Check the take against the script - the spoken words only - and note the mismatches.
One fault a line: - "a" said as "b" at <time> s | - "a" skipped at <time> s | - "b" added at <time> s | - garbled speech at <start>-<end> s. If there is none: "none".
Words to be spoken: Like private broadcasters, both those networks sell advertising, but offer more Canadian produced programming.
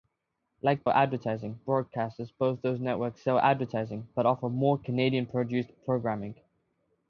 - "private" said as "advertising" at 0.9 s